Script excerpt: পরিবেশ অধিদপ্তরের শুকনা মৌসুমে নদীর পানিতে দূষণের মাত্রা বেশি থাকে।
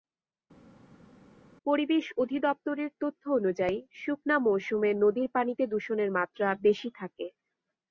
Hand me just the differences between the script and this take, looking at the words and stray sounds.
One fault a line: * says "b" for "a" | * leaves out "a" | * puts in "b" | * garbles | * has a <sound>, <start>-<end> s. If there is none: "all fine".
* puts in "তথ্য অনুযায়ী"